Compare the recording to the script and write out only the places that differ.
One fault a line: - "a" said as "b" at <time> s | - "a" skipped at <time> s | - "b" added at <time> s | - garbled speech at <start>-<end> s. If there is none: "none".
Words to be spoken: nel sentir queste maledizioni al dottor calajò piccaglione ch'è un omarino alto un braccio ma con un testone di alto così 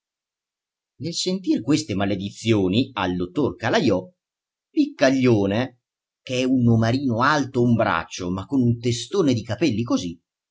- "alto" said as "capelli" at 9.4 s